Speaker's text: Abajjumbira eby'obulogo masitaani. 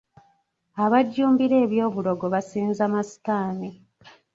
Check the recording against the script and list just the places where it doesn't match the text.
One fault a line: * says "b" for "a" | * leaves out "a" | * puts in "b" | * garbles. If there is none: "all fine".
* puts in "basinza"